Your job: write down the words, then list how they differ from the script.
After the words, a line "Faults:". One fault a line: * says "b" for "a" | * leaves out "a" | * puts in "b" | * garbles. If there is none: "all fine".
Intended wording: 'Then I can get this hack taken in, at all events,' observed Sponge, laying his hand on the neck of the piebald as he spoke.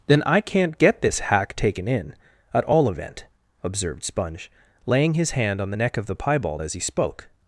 'Then I can't get this hack taken in, at all event,' observed Sponge, laying his hand on the neck of the piebald as he spoke.
Faults:
* says "can't" for "can"
* says "event" for "events"